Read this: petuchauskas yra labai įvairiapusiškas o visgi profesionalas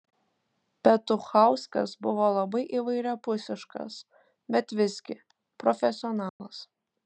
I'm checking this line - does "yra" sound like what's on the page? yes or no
no